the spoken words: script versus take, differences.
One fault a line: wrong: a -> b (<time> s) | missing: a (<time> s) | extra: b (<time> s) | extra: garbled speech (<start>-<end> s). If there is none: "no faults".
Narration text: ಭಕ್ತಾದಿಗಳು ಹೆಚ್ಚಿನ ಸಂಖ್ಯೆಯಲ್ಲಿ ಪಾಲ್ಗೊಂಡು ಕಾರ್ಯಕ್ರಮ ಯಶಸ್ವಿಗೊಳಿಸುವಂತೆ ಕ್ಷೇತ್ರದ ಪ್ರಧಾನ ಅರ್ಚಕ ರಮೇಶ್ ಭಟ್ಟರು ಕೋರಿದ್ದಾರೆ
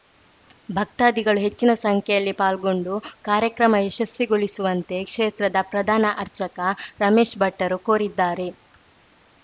no faults